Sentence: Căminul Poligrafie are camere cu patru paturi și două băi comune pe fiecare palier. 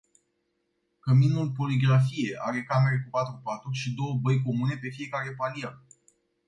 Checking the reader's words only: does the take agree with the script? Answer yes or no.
yes